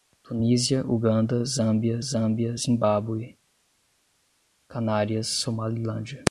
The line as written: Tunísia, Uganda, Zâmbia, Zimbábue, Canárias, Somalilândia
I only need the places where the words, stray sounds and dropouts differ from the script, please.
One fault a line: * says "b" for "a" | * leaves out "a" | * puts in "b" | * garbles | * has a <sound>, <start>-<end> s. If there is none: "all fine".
* puts in "Zâmbia"